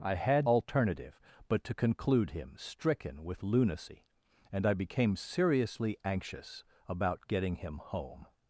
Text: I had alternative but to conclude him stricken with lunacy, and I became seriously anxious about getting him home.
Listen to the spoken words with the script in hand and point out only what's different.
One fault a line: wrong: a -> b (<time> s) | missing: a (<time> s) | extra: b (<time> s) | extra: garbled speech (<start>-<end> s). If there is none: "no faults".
no faults